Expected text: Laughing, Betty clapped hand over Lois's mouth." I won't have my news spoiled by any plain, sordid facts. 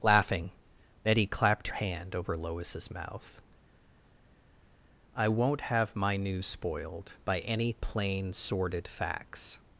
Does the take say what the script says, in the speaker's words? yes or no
yes